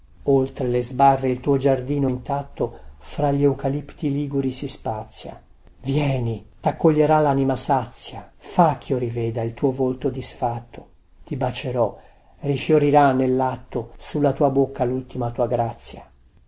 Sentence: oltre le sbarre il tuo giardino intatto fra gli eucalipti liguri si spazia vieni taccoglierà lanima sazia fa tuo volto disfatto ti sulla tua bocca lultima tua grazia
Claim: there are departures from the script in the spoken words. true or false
true